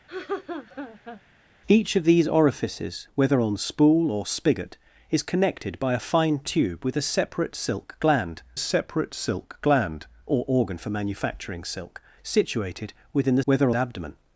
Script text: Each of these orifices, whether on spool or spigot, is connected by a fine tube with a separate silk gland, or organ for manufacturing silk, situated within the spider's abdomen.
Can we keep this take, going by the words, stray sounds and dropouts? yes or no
no